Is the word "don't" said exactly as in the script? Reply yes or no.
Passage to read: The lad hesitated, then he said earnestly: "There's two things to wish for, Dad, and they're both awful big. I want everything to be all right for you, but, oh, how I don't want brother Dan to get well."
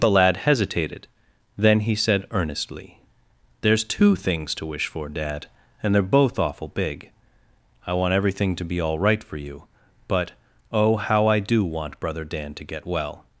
no